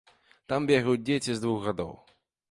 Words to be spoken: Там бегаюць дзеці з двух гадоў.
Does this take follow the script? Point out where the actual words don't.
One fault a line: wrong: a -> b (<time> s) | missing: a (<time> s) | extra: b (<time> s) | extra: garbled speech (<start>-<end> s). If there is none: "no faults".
no faults